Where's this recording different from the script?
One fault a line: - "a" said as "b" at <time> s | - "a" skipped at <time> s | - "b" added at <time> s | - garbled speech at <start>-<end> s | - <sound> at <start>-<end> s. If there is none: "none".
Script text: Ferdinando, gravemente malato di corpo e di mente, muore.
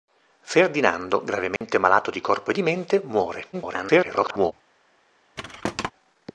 - dropout at 1.6-1.6 s
- garbled speech at 3.5-4.5 s
- thud at 5.4-5.9 s